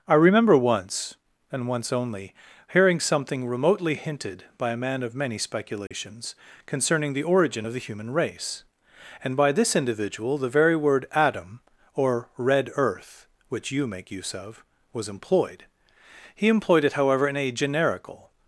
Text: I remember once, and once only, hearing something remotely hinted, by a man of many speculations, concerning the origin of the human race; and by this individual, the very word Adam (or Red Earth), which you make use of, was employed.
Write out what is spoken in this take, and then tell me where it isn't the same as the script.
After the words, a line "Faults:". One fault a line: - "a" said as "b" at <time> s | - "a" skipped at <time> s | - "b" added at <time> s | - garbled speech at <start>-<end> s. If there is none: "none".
I remember once, and once only, hearing something remotely hinted, by a man of many speculations, concerning the origin of the human race; and by this individual, the very word Adam (or Red Earth), which you make use of, was employed. He employed it, however, in a generical
Faults:
- "He employed it however in a generical" added at 16.3 s